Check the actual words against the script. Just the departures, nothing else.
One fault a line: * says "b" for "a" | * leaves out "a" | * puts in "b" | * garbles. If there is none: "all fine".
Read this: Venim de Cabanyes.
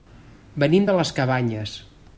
* puts in "les"